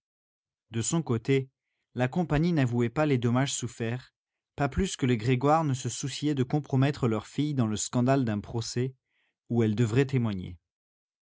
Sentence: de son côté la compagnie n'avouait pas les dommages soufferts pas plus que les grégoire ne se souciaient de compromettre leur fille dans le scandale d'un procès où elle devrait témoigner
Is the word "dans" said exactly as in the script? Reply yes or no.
yes